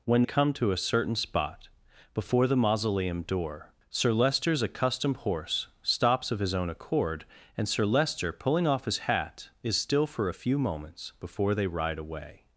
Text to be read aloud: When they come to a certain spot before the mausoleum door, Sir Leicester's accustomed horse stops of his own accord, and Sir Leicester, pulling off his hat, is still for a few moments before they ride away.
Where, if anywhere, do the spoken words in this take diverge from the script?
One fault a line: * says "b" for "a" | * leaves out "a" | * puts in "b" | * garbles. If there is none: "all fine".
* leaves out "they"